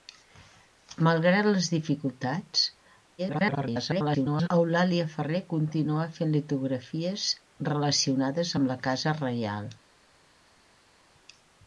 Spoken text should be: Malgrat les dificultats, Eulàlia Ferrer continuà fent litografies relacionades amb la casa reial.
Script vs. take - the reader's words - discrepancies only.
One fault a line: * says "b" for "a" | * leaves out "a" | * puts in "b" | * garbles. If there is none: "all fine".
* garbles